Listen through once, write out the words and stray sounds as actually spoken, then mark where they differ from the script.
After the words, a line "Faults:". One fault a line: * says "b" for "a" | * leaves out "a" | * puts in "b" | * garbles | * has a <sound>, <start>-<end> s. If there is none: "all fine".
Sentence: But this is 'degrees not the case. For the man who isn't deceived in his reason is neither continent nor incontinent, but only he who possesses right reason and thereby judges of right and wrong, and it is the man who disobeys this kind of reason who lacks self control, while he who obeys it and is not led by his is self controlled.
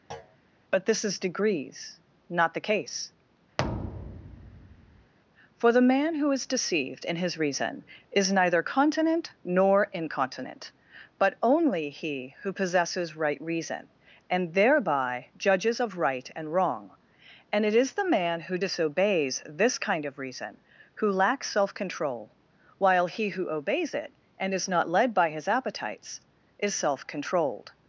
But this is 'degrees not the case. For the man who is deceived in his reason is neither continent nor incontinent, but only he who possesses right reason and thereby judges of right and wrong, and it is the man who disobeys this kind of reason who lacks self control, while he who obeys it and is not led by his appetites is self controlled.
Faults:
* has a thud, 0.1-0.4 s
* has a thud, 3.6-5.1 s
* says "is" for "isn't"
* puts in "appetites"